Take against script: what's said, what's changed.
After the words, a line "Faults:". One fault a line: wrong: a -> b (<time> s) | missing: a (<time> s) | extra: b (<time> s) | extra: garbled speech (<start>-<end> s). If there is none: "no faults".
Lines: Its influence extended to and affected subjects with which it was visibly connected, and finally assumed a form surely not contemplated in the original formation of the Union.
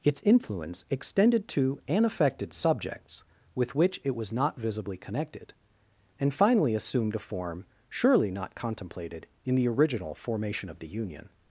Its influence extended to and affected subjects with which it was not visibly connected, and finally assumed a form surely not contemplated in the original formation of the Union.
Faults:
extra: not (4.3 s)